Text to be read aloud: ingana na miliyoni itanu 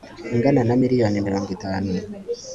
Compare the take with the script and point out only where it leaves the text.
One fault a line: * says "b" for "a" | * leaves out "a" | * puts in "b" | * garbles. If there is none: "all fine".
* puts in "mirongo"